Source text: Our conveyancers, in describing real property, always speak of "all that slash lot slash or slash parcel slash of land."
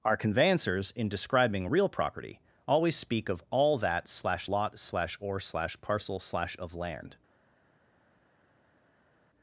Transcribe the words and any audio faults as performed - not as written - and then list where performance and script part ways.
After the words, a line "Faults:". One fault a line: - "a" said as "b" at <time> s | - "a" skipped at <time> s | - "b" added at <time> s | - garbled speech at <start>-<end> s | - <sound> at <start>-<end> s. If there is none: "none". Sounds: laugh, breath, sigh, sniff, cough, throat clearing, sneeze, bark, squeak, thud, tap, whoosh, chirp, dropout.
Our conveyancers, in describing real property, always speak of "all that slash lot slash or slash parcel slash of land."
Faults:
none